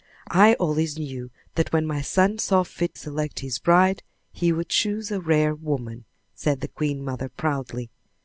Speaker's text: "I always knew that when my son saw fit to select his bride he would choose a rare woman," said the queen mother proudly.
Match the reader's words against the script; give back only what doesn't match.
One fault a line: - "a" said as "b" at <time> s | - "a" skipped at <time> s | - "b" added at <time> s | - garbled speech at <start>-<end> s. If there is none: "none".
- "to" skipped at 3.0 s